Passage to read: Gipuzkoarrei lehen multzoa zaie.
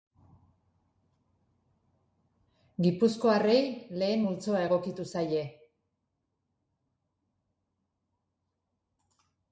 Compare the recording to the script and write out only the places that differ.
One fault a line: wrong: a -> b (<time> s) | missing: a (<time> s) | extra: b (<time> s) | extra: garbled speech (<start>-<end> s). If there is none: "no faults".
extra: egokitu (4.7 s)